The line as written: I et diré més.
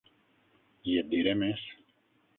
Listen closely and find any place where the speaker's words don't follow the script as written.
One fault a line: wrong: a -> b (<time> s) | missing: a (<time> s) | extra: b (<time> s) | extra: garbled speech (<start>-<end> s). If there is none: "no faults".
no faults